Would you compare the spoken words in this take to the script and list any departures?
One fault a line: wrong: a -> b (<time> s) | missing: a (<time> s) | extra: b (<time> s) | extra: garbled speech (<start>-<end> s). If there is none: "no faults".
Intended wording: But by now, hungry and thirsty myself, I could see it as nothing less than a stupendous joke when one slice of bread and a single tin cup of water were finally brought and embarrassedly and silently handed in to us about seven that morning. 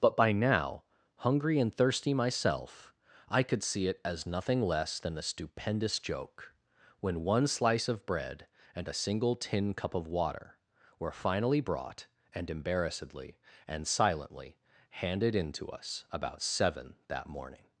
no faults